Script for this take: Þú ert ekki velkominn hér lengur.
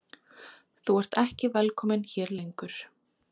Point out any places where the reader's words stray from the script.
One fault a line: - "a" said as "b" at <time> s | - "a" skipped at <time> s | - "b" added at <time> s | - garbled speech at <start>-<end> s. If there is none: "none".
none